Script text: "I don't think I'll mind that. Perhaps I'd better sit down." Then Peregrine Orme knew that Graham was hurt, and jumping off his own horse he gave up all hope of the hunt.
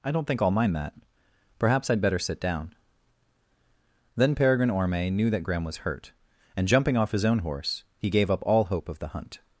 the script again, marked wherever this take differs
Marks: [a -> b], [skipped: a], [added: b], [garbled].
"I don't think I'll mind that. Perhaps I'd better sit down." Then Peregrine Orme knew that Graham was hurt, and jumping off his own horse he gave up all hope of the hunt.